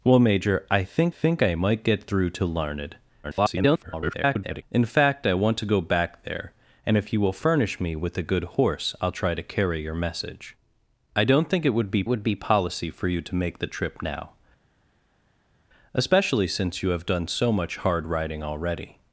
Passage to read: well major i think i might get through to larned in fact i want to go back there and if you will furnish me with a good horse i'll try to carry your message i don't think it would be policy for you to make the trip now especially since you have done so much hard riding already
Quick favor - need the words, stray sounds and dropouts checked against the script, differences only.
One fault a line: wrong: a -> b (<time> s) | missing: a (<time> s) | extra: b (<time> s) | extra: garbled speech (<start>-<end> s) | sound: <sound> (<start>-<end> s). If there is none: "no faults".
extra: think (1.1 s)
extra: garbled speech (3.2-4.6 s)
extra: would be (12.1 s)